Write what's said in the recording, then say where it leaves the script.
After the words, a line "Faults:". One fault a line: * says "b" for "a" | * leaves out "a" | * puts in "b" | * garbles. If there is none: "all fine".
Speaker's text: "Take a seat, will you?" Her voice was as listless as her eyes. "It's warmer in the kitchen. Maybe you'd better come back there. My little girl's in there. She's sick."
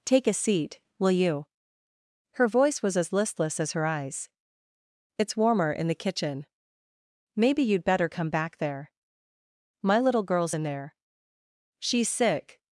"Take a seat, will you?" Her voice was as listless as her eyes. "It's warmer in the kitchen. Maybe you'd better come back there. My little girl's in there. She's sick."
Faults:
all fine